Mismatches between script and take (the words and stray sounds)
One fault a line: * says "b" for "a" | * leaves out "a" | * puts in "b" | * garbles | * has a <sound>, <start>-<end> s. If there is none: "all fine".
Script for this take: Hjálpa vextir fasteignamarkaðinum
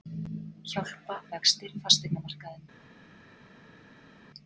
all fine